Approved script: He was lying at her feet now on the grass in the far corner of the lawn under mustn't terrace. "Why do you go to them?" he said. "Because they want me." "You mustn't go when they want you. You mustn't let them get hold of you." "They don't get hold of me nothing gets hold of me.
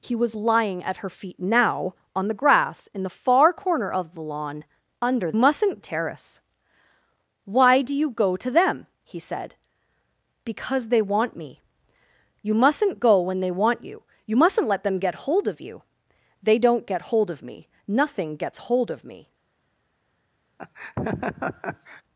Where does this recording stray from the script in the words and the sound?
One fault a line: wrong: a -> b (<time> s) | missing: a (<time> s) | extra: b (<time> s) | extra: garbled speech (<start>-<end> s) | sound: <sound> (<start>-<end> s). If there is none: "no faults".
sound: laugh (20.6-22.0 s)